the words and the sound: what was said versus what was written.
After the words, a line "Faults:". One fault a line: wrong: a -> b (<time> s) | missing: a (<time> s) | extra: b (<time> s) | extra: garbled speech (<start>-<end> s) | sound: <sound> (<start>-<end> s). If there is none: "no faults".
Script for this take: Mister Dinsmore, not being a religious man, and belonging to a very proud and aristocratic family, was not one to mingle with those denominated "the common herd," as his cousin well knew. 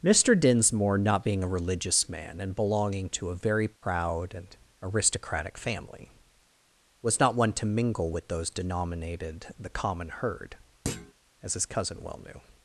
Mister Dinsmore, not being a religious man, and belonging to a very proud and aristocratic family, was not one to mingle with those denominated "the common herd," as his cousin well knew.
Faults:
sound: dropout (3.8-3.8 s)
sound: thud (10.8-11.1 s)